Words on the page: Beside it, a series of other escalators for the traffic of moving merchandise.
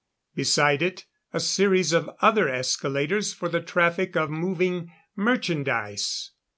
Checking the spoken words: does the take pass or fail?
pass